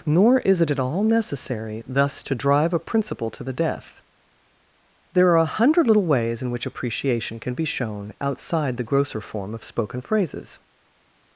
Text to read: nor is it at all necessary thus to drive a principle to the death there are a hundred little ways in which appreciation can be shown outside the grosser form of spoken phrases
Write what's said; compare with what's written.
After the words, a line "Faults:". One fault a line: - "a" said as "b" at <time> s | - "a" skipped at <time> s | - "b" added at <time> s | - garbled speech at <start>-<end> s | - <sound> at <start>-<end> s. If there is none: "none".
nor is it at all necessary thus to drive a principle to the death there are a hundred little ways in which appreciation can be shown outside the grosser form of spoken phrases
Faults:
none